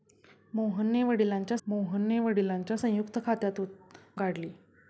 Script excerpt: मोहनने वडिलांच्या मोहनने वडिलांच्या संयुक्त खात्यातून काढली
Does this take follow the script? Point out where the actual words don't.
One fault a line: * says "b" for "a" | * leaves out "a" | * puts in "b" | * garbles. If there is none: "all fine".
all fine